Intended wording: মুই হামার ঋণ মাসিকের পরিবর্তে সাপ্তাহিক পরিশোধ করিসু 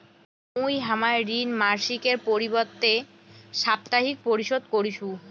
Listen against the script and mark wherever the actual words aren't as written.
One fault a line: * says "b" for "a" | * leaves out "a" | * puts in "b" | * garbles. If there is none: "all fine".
all fine